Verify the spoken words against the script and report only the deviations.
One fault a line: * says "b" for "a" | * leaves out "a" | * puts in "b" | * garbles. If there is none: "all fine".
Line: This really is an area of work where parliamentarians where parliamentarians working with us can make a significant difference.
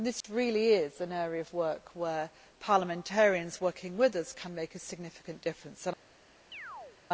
* leaves out "where parliamentarians"